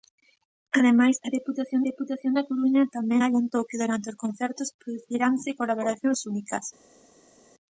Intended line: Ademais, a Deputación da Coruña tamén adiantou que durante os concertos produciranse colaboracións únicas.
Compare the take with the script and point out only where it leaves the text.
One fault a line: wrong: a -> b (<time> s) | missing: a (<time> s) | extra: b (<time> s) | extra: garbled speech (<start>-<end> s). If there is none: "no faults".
extra: Deputación (1.9 s)